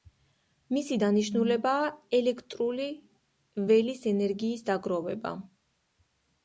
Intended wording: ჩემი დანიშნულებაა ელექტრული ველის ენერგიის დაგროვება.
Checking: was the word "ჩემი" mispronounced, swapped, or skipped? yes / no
yes